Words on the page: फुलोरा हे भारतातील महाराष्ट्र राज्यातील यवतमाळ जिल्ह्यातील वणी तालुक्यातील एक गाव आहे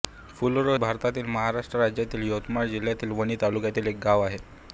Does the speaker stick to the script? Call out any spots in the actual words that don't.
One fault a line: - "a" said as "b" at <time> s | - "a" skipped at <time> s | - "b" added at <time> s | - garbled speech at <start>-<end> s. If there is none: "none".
- "हे" skipped at 0.8 s